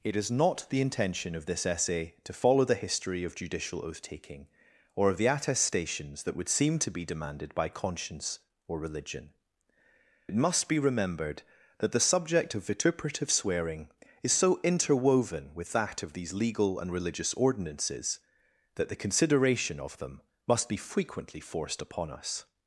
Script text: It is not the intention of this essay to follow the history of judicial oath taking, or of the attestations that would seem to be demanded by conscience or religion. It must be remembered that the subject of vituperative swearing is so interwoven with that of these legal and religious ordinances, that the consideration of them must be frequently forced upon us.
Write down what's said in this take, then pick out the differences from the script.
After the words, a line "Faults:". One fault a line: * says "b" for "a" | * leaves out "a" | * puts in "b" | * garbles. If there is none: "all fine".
It is not the intention of this essay to follow the history of judicial oath taking, or of the attestations that would seem to be demanded by conscience or religion. It must be remembered that the subject of vituperative swearing is so interwoven with that of these legal and religious ordinances, that the consideration of them must be frequently forced upon us.
Faults:
all fine